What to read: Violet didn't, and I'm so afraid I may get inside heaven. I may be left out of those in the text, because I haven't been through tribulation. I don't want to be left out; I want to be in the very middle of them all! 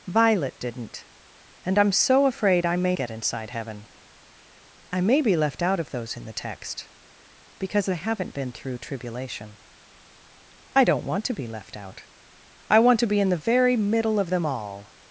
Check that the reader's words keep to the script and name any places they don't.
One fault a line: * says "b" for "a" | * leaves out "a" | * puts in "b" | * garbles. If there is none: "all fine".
all fine